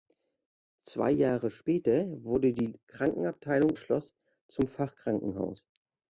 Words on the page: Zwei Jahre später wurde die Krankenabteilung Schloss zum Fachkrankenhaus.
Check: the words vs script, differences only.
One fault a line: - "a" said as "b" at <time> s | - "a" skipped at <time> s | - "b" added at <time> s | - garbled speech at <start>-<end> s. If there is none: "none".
none